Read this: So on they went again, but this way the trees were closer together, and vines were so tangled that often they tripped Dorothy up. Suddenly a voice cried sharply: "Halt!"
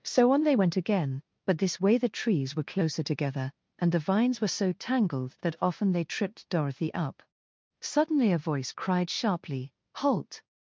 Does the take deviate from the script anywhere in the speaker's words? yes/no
yes